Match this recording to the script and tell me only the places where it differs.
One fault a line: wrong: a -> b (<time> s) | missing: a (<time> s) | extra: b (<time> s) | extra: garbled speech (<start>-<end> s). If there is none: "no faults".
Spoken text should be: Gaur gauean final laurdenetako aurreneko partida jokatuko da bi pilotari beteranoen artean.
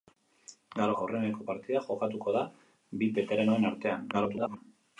missing: gauean final laurdenetako (0.9 s)
missing: pilotari (3.1 s)
extra: garbled speech (4.1-4.6 s)